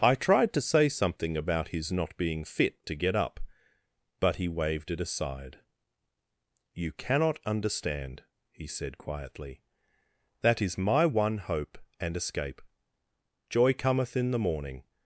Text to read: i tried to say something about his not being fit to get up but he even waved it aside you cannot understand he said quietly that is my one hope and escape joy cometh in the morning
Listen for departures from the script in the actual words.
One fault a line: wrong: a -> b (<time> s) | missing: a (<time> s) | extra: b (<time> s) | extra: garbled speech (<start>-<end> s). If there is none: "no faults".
missing: even (4.5 s)